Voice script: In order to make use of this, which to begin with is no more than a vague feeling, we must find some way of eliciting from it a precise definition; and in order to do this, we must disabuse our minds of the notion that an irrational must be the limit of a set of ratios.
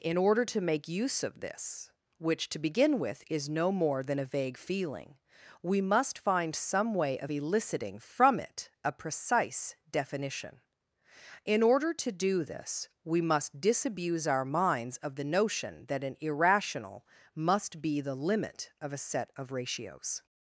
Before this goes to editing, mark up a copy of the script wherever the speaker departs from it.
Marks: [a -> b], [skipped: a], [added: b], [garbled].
In order to make use of this, which to begin with is no more than a vague feeling, we must find some way of eliciting from it a precise definition; [skipped: and] in order to do this, we must disabuse our minds of the notion that an irrational must be the limit of a set of ratios.